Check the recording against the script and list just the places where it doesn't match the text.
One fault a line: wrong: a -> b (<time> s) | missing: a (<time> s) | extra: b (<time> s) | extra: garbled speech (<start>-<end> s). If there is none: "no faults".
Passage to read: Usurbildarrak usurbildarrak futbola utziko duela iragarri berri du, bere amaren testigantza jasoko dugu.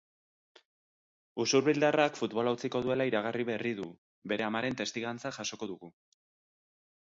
missing: usurbildarrak (2.2 s)